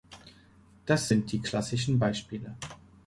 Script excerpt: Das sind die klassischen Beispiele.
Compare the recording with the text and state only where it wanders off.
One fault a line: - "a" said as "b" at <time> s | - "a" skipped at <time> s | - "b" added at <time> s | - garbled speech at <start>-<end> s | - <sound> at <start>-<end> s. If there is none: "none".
none